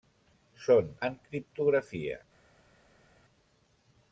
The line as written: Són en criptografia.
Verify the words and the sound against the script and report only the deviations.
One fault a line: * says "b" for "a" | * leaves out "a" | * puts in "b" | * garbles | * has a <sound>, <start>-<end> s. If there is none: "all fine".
all fine